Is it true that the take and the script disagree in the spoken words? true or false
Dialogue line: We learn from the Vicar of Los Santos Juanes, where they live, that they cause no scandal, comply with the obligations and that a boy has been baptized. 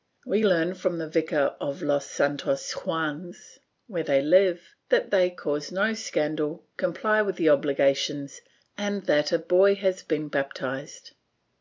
false